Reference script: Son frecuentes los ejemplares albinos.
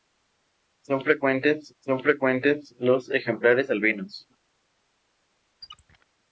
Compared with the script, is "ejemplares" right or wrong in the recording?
right